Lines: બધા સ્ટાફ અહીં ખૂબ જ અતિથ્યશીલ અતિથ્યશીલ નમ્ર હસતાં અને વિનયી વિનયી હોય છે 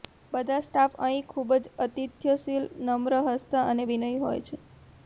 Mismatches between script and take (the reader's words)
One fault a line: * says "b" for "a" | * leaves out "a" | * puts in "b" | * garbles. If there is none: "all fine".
* leaves out "અતિથ્યશીલ"
* leaves out "વિનયી"